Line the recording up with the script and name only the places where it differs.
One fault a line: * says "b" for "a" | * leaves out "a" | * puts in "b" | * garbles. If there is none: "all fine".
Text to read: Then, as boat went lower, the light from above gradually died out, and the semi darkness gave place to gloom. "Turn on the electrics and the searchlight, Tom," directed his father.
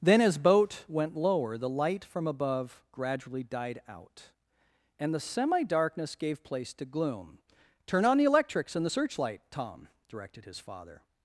all fine